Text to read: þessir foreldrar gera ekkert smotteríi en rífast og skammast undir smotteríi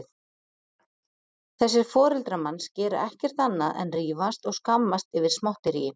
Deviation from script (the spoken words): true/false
true